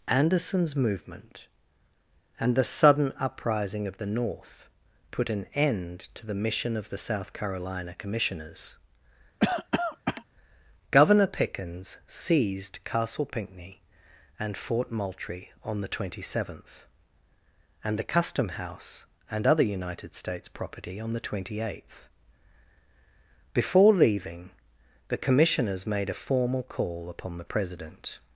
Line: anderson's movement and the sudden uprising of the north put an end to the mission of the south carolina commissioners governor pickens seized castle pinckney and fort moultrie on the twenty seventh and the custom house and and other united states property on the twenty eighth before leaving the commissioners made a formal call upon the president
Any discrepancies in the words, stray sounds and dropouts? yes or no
yes